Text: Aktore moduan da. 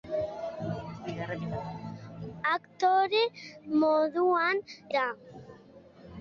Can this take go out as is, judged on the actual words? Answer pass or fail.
pass